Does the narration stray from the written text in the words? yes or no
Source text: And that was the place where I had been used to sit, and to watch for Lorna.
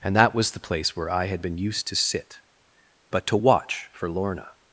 yes